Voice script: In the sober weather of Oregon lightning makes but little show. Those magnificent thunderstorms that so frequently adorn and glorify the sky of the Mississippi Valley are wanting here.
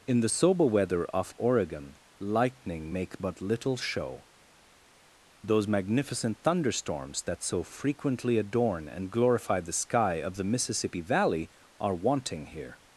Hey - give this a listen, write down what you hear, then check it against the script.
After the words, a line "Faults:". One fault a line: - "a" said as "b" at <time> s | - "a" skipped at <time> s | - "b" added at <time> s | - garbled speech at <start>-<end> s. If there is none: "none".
In the sober weather of Oregon lightning make but little show. Those magnificent thunderstorms that so frequently adorn and glorify the sky of the Mississippi Valley are wanting here.
Faults:
- "makes" said as "make" at 2.9 s